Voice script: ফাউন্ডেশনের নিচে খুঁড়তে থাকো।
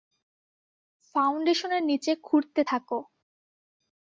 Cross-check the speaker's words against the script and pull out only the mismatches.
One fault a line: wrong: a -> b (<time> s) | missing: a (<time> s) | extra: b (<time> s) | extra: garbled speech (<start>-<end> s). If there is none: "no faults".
no faults